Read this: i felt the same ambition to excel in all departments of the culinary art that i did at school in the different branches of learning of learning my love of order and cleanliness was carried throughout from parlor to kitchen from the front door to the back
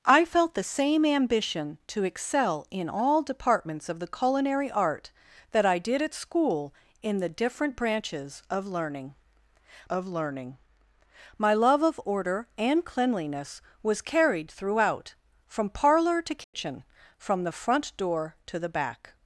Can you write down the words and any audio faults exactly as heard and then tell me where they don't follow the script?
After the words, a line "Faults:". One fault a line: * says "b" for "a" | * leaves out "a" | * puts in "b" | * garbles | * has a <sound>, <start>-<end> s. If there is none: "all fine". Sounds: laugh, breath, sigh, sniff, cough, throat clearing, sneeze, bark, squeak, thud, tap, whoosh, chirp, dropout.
i felt the same ambition to excel in all departments of the culinary art that i did at school in the different branches of learning of learning my love of order and cleanliness was carried throughout from parlor to kitchen from the front door to the back
Faults:
* has a dropout, 16.4-16.5 s